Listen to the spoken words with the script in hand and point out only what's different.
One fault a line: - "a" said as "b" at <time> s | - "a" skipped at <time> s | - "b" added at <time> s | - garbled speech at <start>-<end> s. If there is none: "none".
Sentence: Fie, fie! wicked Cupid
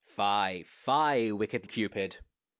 none